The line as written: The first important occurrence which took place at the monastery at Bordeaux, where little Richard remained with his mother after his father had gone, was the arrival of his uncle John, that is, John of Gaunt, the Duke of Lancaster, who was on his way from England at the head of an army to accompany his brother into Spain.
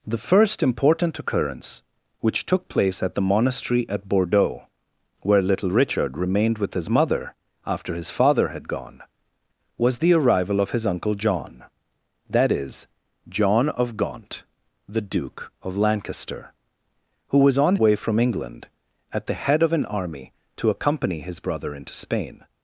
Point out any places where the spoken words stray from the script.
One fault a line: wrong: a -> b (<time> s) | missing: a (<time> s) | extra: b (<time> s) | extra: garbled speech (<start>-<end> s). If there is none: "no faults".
missing: his (17.8 s)